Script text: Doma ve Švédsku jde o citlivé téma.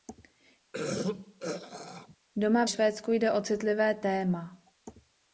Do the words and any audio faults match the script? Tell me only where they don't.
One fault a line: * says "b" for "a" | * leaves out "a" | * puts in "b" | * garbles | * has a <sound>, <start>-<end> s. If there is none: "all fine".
* has a throat clearing, 0.7-2.2 s
* leaves out "ve"